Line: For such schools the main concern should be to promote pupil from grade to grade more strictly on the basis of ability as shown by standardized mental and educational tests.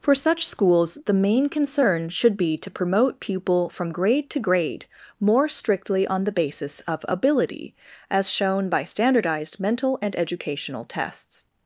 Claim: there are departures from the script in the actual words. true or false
false